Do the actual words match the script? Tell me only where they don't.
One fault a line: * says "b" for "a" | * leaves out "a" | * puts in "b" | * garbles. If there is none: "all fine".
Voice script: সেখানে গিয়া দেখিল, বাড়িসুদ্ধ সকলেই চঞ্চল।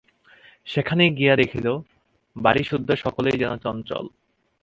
* puts in "যেন"